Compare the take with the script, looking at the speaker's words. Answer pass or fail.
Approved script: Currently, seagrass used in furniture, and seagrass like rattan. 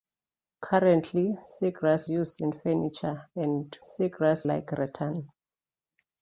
pass